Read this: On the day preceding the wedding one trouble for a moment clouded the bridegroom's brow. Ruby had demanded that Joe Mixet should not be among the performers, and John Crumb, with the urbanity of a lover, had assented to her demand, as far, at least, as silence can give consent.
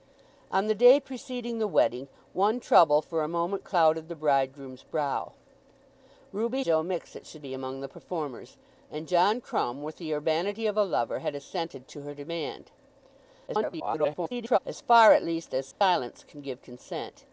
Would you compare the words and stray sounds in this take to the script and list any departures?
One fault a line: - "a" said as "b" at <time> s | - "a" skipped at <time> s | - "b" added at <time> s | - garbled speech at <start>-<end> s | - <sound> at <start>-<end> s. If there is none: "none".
- "had demanded that" skipped at 6.7 s
- "not" skipped at 7.4 s
- garbled speech at 13.5-14.6 s
- dropout at 15.7-15.8 s